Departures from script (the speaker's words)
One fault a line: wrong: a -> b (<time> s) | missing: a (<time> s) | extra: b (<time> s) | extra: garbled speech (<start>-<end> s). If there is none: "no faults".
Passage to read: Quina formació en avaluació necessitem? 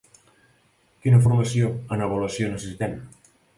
no faults